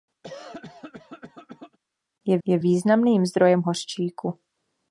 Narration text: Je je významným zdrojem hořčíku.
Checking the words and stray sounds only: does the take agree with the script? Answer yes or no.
no